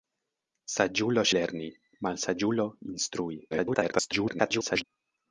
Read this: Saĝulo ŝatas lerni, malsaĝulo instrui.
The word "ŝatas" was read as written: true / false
false